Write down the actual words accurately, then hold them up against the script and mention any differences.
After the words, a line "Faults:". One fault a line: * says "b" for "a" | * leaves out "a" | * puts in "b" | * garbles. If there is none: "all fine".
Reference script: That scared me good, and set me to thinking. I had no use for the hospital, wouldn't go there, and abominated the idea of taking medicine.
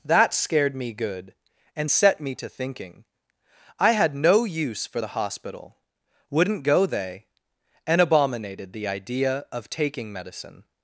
That scared me good, and set me to thinking. I had no use for the hospital, wouldn't go they, and abominated the idea of taking medicine.
Faults:
* says "they" for "there"